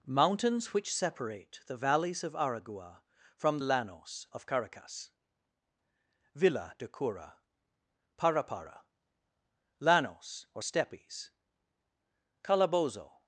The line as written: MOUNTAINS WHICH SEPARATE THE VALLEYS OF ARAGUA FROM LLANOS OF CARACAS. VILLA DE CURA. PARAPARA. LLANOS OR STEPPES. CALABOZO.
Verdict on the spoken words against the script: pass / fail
pass